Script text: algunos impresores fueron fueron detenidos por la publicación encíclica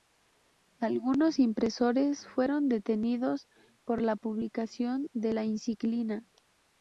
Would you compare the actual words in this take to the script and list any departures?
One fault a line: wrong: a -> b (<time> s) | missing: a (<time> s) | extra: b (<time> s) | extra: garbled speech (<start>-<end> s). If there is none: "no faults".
missing: fueron (2.7 s)
extra: de la (5.1 s)